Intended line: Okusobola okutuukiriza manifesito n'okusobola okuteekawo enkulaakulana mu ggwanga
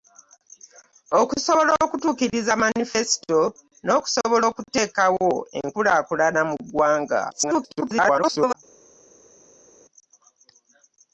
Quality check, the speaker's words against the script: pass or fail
fail